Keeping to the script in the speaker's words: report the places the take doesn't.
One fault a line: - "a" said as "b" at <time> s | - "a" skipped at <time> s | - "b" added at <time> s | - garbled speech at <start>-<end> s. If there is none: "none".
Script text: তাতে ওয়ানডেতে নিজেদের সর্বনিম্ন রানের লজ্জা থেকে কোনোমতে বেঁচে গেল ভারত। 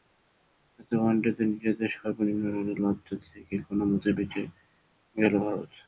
none